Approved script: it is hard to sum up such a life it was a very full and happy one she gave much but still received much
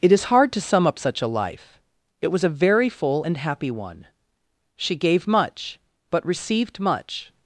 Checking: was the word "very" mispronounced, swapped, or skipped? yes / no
no